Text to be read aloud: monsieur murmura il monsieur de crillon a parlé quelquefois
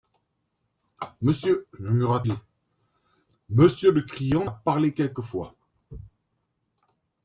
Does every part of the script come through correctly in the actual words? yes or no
yes